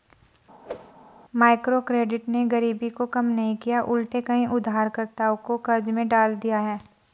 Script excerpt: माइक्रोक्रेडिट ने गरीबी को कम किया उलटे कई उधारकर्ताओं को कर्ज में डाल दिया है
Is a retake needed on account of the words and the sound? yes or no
yes